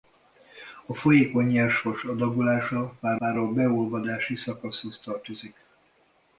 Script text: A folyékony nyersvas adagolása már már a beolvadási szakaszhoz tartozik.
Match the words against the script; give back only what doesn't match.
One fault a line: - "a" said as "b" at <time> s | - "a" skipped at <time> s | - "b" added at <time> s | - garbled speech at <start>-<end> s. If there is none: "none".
none